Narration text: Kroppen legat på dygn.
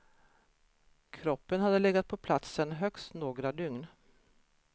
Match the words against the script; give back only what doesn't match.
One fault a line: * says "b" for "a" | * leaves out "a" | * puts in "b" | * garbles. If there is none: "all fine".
* puts in "hade"
* puts in "platsen högst några"